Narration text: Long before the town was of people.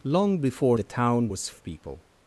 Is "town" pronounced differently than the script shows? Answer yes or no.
no